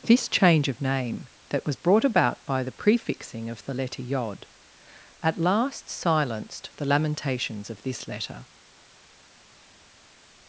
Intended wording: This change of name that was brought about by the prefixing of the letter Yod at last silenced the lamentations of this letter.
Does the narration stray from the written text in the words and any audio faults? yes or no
no